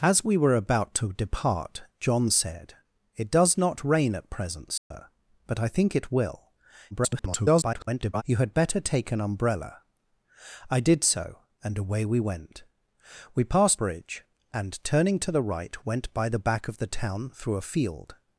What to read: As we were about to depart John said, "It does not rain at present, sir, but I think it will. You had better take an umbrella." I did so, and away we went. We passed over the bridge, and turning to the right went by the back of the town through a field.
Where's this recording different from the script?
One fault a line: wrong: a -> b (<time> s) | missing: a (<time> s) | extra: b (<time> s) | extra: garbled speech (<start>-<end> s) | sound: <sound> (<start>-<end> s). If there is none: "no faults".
sound: dropout (4.8-4.9 s)
extra: garbled speech (6.9-8.2 s)
missing: over the (13.8 s)